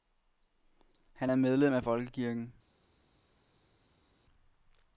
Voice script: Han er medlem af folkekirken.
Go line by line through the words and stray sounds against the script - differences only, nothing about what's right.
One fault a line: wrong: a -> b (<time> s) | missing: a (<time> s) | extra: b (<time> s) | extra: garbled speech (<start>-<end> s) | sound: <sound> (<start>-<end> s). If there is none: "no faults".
no faults